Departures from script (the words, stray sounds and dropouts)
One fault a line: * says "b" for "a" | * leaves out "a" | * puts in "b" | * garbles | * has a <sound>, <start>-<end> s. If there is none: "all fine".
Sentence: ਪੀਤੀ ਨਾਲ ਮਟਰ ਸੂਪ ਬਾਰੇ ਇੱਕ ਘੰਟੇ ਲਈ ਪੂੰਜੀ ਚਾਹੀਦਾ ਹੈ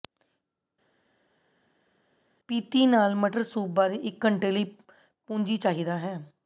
all fine